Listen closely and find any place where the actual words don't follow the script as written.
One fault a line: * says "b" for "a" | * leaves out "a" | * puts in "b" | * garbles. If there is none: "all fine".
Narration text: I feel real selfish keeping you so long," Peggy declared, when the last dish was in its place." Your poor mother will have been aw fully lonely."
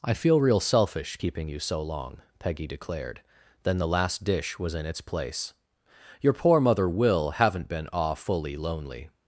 * says "then" for "when"
* says "haven't" for "have"